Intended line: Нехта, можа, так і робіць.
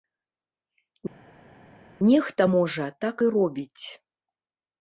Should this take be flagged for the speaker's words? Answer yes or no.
no